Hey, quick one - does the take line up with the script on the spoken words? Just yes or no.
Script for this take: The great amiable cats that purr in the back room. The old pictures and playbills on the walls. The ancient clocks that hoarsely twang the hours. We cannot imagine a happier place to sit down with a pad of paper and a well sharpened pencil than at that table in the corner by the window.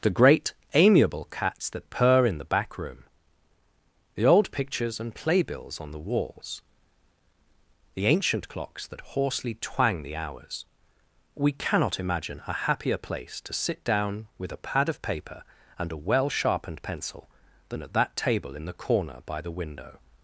yes